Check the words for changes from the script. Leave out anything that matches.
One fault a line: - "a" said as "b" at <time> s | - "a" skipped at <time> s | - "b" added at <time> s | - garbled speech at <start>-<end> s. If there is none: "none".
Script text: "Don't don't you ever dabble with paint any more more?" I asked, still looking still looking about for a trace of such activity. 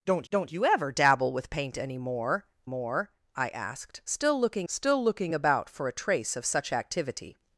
none